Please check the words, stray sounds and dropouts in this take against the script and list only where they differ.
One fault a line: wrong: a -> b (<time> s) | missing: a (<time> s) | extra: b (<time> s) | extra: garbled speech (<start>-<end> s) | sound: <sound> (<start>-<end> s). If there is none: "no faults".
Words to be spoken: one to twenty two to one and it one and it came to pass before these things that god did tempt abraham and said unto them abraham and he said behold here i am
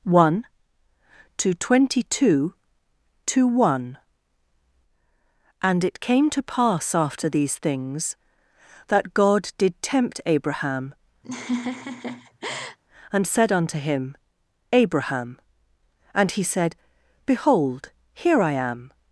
missing: one and it (6.0 s)
wrong: before -> after (7.0 s)
sound: laugh (11.2-12.8 s)
wrong: them -> him (13.8 s)